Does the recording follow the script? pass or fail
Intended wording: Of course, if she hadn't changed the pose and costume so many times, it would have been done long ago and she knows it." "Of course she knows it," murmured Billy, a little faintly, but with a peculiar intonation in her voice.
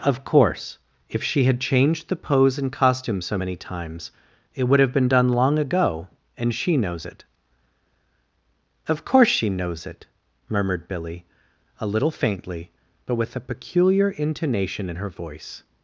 fail